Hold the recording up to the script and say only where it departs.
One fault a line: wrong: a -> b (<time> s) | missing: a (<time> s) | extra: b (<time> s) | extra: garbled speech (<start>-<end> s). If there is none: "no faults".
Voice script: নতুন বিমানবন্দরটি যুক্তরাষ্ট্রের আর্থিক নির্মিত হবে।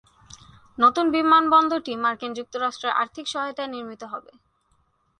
extra: মার্কিন (2.0 s)
extra: সহায়তায় (3.3 s)